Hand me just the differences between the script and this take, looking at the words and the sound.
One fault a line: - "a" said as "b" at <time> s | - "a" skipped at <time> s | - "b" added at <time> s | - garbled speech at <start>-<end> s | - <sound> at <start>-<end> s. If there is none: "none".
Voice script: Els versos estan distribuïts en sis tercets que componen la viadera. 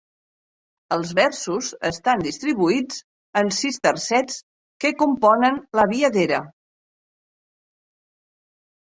none